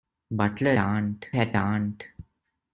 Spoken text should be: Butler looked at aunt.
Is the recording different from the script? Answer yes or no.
yes